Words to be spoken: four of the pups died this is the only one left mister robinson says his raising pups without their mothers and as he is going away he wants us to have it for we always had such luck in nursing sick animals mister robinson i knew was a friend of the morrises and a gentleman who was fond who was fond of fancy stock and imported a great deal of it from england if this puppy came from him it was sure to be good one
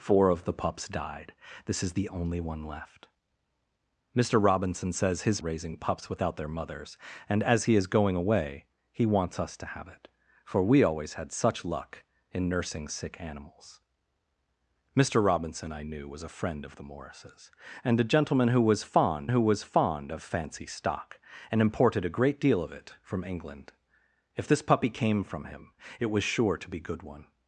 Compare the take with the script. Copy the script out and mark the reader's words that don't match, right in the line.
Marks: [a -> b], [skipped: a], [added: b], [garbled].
four of the pups died this is the only one left mister robinson says his raising pups without their mothers and as he is going away he wants us to have it for we always had such luck in nursing sick animals mister robinson i knew was a friend of the morrises and a gentleman who was fond who was fond of fancy stock and imported a great deal of it from england if this puppy came from him it was sure to be good one